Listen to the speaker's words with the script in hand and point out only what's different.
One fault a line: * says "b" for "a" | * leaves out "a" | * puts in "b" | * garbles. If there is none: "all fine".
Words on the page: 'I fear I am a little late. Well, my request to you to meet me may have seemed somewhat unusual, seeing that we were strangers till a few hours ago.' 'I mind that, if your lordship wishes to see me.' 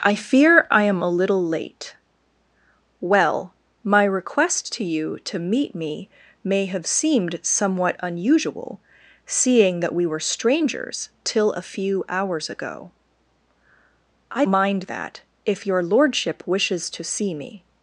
all fine